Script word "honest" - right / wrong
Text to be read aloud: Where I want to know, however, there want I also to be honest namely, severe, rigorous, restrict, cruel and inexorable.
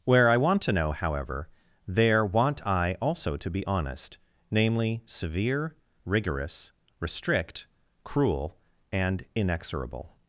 right